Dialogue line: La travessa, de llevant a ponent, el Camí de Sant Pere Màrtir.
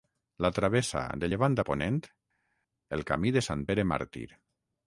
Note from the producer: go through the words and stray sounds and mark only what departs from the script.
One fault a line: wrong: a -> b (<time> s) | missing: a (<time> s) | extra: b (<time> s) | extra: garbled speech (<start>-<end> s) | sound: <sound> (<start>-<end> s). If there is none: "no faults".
no faults